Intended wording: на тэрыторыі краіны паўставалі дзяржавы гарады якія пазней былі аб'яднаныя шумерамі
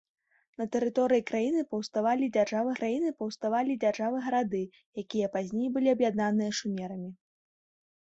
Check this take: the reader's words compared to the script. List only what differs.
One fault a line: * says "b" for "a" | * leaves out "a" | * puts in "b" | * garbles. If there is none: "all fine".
* puts in "краіны паўставалі дзяржавы"